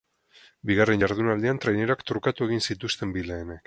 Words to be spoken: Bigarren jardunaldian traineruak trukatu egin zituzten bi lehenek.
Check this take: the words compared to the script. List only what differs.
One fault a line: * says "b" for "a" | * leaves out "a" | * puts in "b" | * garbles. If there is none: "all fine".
all fine